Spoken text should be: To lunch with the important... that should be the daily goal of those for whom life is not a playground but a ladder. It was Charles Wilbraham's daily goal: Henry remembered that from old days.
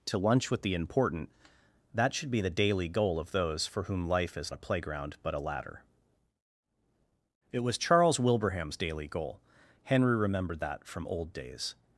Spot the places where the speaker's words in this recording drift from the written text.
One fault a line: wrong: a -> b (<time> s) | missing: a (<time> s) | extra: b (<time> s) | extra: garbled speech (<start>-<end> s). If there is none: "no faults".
missing: not (4.5 s)